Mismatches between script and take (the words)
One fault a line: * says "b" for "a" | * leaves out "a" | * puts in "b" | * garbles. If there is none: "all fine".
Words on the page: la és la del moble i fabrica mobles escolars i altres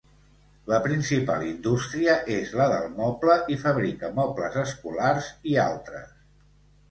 * puts in "principal indústria"